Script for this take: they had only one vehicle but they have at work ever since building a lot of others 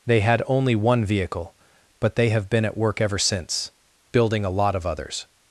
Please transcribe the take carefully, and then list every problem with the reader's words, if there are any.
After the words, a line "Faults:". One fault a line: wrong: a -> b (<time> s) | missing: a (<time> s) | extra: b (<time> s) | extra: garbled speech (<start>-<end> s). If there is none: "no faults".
they had only one vehicle but they have been at work ever since building a lot of others
Faults:
extra: been (2.5 s)